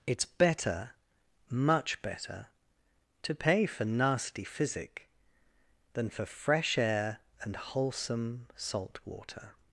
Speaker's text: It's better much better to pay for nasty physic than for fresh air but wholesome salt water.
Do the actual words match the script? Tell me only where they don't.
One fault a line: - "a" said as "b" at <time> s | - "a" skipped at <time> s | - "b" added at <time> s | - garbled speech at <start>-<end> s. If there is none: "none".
- "but" said as "and" at 7.4 s